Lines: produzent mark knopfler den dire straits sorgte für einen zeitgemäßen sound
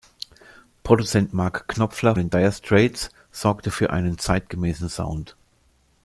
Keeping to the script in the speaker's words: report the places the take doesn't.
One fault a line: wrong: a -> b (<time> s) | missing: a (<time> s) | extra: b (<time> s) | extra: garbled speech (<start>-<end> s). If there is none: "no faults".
no faults